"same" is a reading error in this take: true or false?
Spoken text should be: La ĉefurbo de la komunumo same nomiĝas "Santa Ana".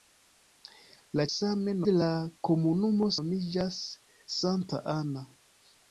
true